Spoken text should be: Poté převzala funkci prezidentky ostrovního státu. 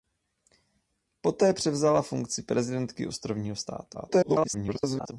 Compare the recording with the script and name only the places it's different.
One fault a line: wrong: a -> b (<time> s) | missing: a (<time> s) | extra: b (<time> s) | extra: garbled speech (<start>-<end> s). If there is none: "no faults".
extra: garbled speech (3.9-5.1 s)